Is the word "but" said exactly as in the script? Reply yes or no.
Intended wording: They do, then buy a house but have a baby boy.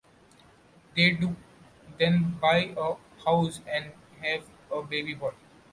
no